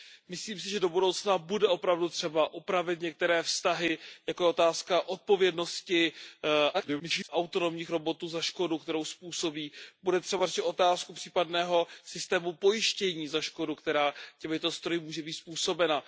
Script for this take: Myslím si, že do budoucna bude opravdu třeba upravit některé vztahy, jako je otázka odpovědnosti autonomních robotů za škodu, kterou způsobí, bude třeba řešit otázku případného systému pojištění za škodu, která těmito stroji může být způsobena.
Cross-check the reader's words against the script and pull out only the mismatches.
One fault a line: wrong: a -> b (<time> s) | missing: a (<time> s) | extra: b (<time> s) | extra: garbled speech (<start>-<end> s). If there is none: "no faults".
extra: garbled speech (6.7-7.3 s)